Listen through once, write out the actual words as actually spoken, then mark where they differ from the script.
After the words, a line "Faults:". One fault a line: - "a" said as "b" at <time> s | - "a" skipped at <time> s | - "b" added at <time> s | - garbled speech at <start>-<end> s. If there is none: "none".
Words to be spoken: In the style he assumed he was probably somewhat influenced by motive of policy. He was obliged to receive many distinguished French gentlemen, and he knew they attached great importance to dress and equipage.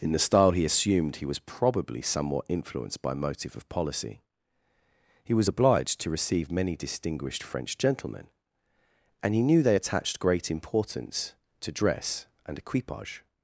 In the style he assumed he was probably somewhat influenced by motive of policy. He was obliged to receive many distinguished French gentlemen, and he knew they attached great importance to dress and equipage.
Faults:
none